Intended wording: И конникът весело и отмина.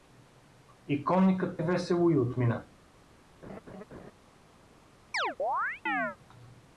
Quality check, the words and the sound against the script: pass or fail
fail